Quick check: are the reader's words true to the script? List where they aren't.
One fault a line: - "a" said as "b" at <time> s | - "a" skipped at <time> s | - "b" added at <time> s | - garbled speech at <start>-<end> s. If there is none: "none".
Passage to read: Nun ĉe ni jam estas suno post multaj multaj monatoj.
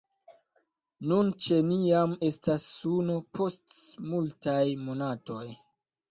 - "multaj" skipped at 4.6 s